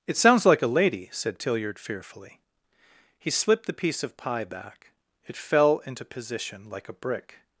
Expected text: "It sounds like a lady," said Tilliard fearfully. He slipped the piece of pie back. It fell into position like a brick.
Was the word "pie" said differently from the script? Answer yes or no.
no